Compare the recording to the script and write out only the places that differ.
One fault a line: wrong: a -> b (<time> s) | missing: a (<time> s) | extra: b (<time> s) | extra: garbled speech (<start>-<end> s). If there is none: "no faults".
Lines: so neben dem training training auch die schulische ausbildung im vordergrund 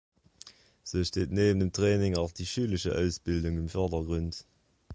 extra: steht (1.0 s)
missing: training (2.2 s)